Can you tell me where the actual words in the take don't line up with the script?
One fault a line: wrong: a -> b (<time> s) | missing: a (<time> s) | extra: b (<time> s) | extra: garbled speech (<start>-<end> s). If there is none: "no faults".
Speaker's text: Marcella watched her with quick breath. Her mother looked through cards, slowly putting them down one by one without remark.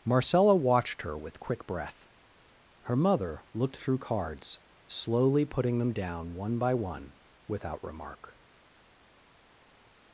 no faults